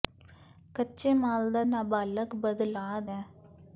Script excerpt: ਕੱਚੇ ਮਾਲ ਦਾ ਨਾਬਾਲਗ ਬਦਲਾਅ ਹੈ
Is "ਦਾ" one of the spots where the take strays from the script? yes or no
no